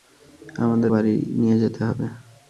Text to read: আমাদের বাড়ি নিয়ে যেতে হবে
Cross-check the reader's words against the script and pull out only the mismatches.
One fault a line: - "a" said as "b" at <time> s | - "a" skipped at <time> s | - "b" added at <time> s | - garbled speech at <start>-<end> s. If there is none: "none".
none